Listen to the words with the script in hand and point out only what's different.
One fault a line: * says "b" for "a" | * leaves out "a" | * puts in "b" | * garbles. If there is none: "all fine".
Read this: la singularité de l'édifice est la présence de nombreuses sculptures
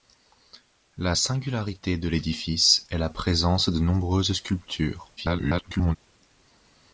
* garbles